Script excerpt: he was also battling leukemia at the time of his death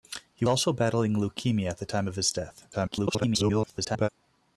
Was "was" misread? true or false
true